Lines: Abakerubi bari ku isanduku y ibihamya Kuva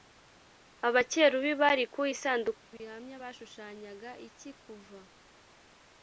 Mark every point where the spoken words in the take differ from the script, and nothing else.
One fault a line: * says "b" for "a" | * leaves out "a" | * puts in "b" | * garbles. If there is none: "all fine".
* puts in "bashushanyaga iki"